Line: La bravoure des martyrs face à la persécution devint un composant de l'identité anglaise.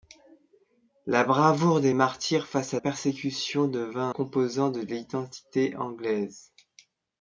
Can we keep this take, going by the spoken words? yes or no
no